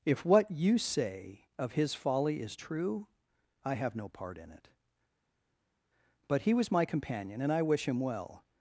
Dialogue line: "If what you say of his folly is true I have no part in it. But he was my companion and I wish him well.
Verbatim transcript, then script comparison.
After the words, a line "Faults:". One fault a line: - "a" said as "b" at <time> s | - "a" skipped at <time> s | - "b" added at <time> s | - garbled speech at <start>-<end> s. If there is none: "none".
"If what you say of his folly is true I have no part in it. But he was my companion and I wish him well.
Faults:
none